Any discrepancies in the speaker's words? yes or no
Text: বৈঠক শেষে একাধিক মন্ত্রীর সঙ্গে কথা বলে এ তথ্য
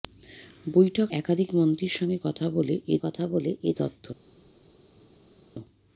yes